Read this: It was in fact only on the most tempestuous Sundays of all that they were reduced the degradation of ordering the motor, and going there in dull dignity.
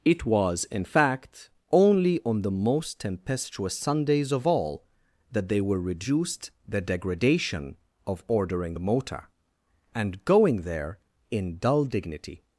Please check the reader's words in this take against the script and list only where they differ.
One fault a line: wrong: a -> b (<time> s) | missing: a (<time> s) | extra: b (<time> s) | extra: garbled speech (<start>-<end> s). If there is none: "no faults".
no faults